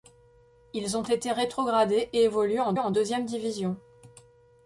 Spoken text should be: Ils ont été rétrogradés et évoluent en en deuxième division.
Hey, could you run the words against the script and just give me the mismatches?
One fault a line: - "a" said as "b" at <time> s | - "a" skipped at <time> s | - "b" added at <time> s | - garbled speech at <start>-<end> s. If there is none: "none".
none